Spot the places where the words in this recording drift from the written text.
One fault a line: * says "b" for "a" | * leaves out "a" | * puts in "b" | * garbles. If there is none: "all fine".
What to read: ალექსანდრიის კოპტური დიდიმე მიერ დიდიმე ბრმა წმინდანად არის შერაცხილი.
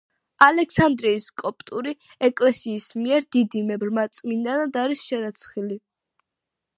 * says "ეკლესიის" for "დიდიმე"